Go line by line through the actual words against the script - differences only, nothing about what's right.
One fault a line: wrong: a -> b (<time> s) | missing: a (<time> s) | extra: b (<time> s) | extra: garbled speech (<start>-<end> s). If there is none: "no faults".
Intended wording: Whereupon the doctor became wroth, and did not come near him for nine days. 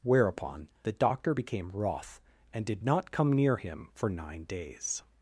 no faults